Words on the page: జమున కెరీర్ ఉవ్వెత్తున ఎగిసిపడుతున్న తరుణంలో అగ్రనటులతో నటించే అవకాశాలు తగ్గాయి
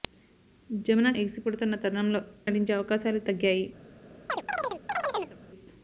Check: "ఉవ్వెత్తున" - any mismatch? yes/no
yes